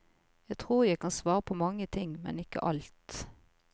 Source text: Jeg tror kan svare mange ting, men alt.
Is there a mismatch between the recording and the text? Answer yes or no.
yes